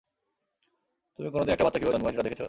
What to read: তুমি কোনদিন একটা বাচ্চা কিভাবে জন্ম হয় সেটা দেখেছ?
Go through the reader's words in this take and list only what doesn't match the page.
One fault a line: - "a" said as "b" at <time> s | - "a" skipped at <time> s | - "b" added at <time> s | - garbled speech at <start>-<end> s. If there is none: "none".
none